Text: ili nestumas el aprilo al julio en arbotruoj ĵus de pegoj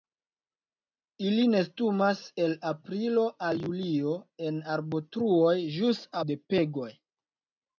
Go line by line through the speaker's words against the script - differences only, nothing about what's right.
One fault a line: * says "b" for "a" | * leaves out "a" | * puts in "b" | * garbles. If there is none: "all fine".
all fine